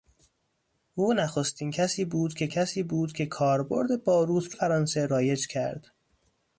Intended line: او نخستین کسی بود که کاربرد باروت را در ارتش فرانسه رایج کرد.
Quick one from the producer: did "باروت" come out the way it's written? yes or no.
no